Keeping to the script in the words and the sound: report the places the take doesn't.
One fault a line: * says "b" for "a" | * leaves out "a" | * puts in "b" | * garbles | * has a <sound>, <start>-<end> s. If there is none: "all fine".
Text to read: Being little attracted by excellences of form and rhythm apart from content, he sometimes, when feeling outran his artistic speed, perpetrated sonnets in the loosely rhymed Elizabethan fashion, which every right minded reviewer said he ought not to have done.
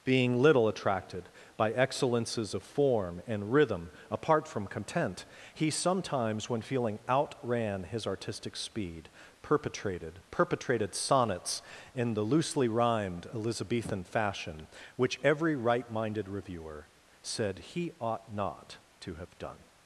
* puts in "perpetrated"